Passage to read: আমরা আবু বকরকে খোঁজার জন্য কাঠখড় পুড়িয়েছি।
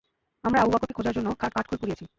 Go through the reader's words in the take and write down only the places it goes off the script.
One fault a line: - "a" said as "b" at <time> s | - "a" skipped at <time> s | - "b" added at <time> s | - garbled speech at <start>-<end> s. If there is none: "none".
none